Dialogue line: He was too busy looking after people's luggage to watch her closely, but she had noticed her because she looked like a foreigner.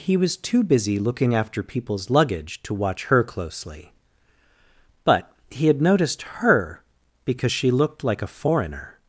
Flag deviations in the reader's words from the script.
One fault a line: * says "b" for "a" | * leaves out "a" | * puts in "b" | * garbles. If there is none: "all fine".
* says "he" for "she"